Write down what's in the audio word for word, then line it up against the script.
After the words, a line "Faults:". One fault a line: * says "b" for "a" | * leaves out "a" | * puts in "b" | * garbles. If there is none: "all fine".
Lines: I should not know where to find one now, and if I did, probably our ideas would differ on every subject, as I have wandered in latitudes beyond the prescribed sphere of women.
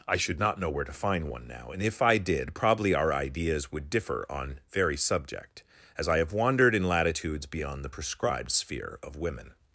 I should not know where to find one now, and if I did, probably our ideas would differ on very subject, as I have wandered in latitudes beyond the prescribed sphere of women.
Faults:
* says "very" for "every"